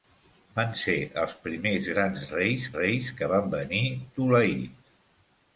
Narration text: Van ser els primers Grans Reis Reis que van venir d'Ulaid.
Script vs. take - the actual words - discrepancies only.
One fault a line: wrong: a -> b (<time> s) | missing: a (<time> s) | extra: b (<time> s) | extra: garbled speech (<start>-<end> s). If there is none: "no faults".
no faults